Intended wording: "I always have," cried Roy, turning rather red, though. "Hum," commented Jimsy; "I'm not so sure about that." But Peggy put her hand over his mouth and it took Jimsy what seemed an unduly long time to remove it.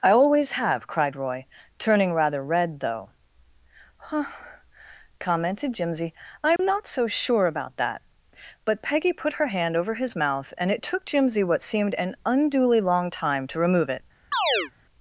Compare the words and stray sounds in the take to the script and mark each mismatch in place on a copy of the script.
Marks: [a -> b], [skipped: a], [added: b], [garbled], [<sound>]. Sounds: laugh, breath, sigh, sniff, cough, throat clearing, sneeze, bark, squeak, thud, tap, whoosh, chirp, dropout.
"I always have," cried Roy, turning rather red, though. ["Hum," -> Huh] commented Jimsy; "I'm [dropout] not so sure about that." But Peggy put her hand over his mouth and it took Jimsy what seemed an unduly long time to remove it. [chirp]